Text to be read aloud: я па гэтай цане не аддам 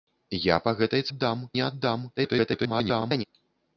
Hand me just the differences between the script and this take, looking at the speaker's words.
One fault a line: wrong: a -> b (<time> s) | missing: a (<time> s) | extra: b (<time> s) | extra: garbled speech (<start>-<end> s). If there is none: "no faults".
wrong: цане -> аддам (1.1 s)
extra: garbled speech (2.2-3.2 s)